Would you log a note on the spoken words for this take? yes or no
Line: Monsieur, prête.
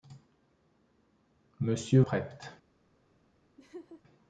no